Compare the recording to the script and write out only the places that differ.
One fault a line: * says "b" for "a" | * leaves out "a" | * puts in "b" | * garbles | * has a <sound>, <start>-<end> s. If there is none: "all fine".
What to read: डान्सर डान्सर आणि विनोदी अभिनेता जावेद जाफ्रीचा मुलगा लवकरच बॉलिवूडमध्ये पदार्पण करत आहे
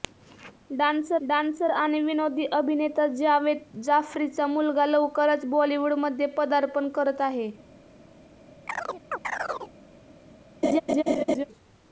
* has a chirp, 8.7-9.7 s
* has a laugh, 10.6-11.4 s